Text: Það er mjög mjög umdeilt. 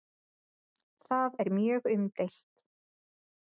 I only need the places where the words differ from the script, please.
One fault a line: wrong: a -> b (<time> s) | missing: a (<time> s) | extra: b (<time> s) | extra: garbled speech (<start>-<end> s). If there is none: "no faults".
missing: mjög (1.9 s)